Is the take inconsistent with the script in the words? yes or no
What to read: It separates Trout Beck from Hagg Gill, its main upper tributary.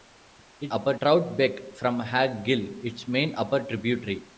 yes